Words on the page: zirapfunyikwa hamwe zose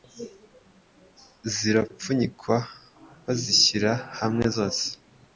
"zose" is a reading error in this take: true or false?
false